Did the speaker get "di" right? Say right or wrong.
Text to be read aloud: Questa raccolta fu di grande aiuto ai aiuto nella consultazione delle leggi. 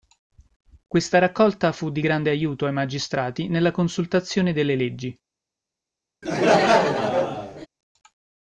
right